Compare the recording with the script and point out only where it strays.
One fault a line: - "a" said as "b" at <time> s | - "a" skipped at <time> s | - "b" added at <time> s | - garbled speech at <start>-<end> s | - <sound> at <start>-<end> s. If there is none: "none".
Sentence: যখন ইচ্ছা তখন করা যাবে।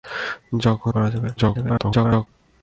- "ইচ্ছা তখন" skipped at 0.9 s
- garbled speech at 1.4-2.3 s